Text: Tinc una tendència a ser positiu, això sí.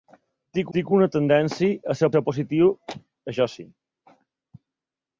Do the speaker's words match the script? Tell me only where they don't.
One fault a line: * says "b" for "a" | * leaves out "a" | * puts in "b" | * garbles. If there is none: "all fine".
* puts in "tinc"
* puts in "ser"